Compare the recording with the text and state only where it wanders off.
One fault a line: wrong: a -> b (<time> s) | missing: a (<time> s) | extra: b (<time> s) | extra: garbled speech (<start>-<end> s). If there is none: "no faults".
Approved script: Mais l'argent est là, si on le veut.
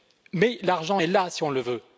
no faults